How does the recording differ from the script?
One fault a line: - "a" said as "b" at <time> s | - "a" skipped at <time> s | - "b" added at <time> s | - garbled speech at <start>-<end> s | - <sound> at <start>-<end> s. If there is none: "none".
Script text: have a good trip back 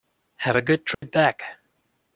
- dropout at 0.9-1.0 s